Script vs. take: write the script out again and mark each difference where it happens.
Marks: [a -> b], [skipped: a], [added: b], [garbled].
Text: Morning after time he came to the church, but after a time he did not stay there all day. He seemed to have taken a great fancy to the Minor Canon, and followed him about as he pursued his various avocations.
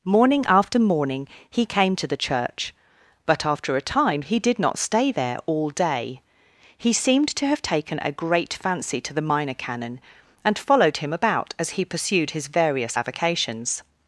Morning after [time -> morning] he came to the church, but after a time he did not stay there all day. He seemed to have taken a great fancy to the Minor Canon, and followed him about as he pursued his various avocations.